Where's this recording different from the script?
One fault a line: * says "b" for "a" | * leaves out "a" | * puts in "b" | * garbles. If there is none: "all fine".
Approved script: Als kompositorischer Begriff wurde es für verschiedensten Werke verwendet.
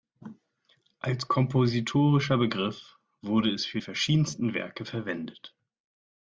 all fine